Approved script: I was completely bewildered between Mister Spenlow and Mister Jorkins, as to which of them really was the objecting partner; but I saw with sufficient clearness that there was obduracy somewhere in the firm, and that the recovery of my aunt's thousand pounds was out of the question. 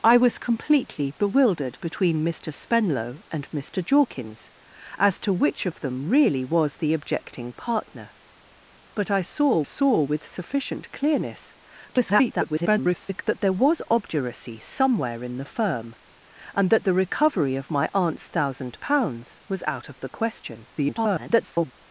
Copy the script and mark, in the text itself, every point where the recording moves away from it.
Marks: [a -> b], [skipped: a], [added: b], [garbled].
I was completely bewildered between Mister Spenlow and Mister Jorkins, as to which of them really was the objecting partner; but I saw [added: saw] with sufficient clearness [garbled] that there was obduracy somewhere in the firm, and that the recovery of my aunt's thousand pounds was out of the question. [garbled]